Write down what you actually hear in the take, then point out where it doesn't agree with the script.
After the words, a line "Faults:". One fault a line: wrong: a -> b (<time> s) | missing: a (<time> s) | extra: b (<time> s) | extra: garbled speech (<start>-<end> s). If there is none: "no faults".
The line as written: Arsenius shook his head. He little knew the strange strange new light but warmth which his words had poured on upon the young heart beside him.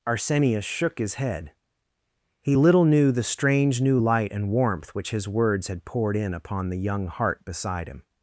Arsenius shook his head. He little knew the strange new light and warmth which his words had poured in upon the young heart beside him.
Faults:
missing: strange (3.8 s)
wrong: but -> and (4.3 s)
wrong: on -> in (6.2 s)